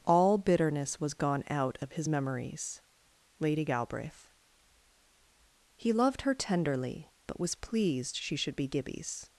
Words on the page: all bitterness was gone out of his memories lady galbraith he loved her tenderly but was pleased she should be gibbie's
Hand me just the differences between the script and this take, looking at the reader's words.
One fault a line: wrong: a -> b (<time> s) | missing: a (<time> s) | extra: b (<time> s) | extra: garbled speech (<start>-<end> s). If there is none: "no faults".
no faults